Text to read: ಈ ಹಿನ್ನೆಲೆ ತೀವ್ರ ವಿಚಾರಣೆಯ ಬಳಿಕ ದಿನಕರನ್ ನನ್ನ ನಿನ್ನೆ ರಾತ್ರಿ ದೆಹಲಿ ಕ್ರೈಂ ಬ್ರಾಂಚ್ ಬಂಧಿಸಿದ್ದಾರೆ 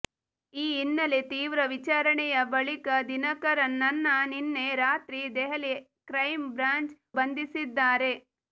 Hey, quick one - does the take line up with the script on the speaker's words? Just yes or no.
yes